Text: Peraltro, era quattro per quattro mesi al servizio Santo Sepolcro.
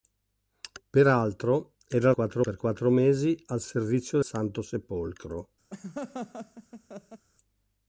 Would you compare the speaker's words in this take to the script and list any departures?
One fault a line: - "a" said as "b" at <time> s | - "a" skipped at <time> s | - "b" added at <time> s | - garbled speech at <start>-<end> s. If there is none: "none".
none